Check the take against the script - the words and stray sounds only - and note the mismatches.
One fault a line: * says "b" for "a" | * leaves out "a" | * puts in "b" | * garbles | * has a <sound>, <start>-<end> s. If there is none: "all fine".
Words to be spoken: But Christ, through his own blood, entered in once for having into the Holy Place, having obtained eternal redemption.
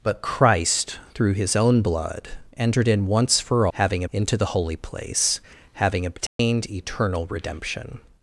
* has a dropout, 6.3-6.4 s